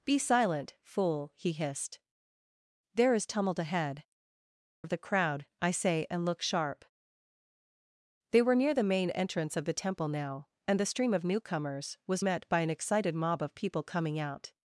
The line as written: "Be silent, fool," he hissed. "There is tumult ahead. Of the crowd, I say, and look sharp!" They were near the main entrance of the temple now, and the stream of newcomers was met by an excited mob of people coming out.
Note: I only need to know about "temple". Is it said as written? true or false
true